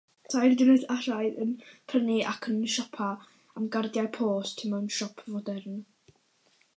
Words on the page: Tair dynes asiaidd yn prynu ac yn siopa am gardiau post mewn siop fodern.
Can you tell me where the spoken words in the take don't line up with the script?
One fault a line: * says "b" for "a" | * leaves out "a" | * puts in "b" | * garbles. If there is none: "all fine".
all fine